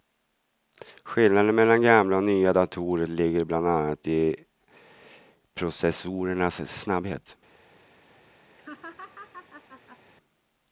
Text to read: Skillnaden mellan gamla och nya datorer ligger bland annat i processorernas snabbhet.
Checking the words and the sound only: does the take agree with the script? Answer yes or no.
no